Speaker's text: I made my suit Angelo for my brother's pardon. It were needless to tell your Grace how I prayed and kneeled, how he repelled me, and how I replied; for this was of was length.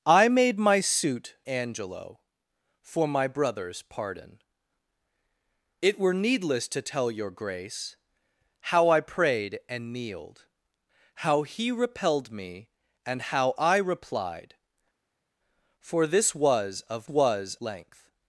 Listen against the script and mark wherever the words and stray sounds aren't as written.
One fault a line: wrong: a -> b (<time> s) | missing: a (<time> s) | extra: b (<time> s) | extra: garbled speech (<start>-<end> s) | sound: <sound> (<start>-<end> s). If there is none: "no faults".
no faults